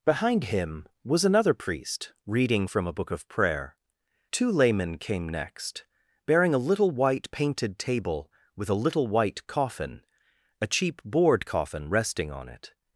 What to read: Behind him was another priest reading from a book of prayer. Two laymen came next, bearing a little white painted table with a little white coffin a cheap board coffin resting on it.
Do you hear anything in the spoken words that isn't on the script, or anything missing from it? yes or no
no